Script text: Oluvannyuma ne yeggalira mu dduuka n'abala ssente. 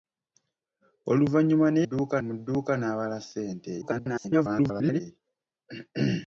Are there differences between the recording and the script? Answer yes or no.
yes